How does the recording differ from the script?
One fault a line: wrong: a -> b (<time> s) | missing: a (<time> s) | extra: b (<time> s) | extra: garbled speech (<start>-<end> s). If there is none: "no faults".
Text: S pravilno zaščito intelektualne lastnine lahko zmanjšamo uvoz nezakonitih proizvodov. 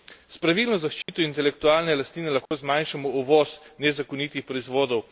no faults